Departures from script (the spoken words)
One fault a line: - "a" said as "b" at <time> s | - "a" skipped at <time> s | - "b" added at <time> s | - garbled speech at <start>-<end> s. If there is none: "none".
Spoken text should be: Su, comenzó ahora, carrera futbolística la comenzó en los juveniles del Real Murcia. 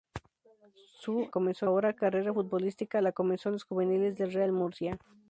none